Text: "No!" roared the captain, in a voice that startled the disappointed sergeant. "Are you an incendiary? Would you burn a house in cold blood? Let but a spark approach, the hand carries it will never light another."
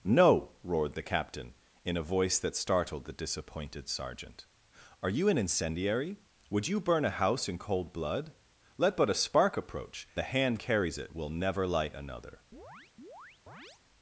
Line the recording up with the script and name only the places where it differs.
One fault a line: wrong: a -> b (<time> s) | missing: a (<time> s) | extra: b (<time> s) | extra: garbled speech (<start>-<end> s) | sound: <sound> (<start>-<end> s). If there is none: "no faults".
sound: chirp (12.5-13.8 s)